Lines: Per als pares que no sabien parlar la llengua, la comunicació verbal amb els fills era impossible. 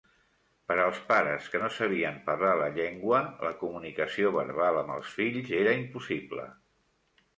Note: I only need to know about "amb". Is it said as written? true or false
true